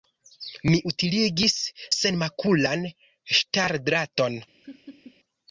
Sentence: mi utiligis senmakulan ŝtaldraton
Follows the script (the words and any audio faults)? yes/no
no